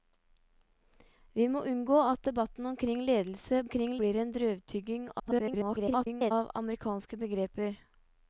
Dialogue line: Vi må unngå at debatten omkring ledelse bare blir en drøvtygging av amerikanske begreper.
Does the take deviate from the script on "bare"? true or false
true